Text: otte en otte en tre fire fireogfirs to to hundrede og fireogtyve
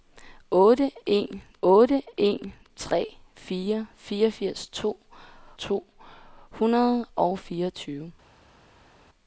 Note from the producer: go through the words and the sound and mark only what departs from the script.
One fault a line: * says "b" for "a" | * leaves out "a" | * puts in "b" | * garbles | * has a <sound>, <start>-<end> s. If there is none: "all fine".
all fine